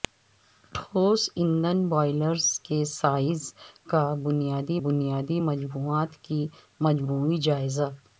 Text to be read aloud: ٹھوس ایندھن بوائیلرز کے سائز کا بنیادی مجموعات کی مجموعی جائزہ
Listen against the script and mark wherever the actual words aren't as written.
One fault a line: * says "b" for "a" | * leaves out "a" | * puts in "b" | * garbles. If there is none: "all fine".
* puts in "بنیادی"